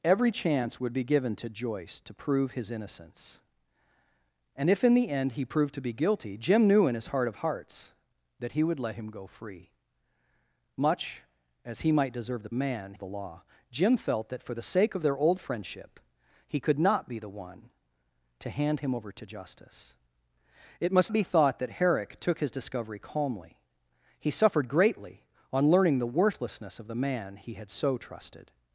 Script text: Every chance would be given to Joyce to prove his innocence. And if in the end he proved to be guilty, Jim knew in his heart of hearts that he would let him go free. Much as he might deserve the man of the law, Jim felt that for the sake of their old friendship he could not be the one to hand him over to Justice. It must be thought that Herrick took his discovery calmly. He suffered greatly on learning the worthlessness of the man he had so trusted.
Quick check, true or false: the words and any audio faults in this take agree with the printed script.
true